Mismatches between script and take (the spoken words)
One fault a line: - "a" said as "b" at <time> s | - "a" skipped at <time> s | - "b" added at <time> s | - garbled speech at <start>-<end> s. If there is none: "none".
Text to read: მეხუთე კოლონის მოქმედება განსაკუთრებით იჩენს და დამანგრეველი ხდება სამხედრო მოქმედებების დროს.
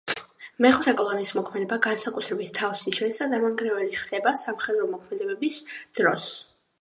- "თავს" added at 2.6 s